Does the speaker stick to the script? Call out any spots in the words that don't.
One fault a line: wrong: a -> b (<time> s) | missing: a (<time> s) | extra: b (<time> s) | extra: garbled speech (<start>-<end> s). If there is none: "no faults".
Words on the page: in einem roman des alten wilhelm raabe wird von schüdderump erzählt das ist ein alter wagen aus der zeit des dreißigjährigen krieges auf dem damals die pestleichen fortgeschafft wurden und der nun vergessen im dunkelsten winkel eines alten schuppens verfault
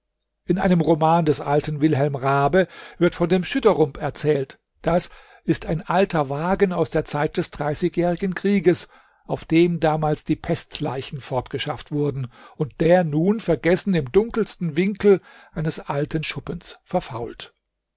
extra: dem (3.3 s)